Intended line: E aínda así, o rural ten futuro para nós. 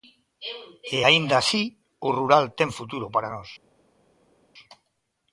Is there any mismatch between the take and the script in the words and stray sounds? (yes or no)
no